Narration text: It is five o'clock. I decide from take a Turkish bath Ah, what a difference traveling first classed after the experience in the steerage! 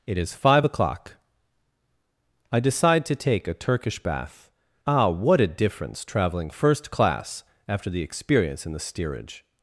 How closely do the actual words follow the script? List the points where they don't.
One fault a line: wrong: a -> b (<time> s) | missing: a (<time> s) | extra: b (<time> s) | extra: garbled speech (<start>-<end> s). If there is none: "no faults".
wrong: from -> to (3.1 s)
wrong: classed -> class (6.9 s)